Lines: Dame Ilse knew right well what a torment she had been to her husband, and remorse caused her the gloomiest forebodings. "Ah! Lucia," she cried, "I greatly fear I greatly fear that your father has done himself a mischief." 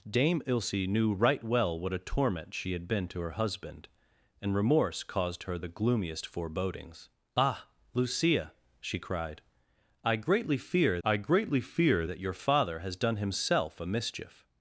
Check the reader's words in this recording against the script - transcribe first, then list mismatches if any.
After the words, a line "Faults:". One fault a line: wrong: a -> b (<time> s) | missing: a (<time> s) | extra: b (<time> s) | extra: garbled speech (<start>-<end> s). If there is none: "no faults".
Dame Ilse knew right well what a torment she had been to her husband, and remorse caused her the gloomiest forebodings. "Ah! Lucia," she cried, "I greatly fear I greatly fear that your father has done himself a mischief."
Faults:
no faults